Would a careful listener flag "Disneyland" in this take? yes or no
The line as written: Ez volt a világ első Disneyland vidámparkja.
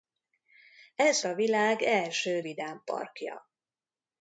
yes